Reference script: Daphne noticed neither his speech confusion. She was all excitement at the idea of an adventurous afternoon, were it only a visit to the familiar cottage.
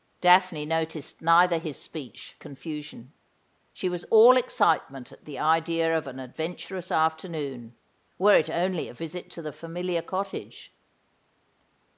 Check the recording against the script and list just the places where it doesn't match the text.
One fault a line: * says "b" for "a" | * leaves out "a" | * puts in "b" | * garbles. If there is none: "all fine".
all fine